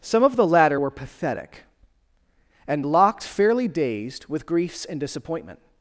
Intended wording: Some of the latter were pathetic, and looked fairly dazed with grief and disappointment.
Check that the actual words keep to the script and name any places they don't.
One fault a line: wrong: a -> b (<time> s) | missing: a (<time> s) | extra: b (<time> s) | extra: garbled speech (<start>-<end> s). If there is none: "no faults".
wrong: looked -> locked (2.8 s)
wrong: grief -> griefs (4.4 s)